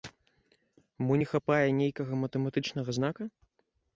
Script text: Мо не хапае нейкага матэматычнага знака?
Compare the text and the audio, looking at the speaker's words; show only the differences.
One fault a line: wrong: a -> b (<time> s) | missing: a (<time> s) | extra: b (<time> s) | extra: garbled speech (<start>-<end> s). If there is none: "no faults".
no faults